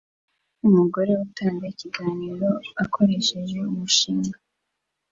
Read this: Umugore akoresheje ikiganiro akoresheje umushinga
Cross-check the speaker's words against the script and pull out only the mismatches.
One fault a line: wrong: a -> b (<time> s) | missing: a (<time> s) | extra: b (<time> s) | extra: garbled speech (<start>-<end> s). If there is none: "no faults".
wrong: akoresheje -> utanga (1.2 s)